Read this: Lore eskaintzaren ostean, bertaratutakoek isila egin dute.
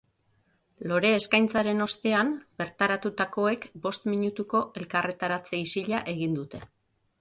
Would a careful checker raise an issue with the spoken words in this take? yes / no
yes